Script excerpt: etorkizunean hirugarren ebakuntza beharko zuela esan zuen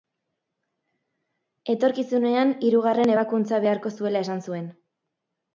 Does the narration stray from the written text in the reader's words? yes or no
no